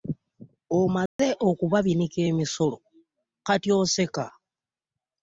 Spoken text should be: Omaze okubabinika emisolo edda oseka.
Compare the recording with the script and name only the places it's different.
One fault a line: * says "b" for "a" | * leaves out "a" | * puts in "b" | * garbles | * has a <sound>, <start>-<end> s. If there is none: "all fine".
* has a dropout, 1.1-1.2 s
* says "kati" for "edda"